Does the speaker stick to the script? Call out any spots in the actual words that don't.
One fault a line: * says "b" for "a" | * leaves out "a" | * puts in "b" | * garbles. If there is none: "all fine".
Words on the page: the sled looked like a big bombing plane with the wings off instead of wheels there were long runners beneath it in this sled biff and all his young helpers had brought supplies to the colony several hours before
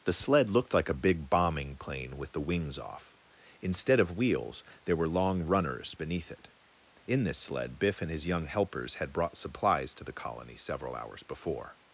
* leaves out "all"